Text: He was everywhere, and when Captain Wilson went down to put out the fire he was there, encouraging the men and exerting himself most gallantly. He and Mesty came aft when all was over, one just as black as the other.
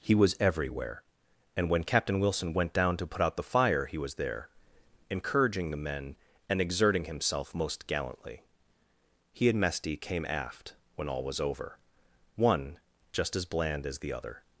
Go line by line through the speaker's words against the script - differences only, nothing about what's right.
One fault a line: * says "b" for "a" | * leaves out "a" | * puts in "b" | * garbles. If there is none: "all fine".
* says "bland" for "black"